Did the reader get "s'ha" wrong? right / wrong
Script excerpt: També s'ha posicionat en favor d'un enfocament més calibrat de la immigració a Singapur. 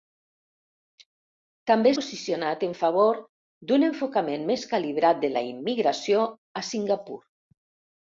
wrong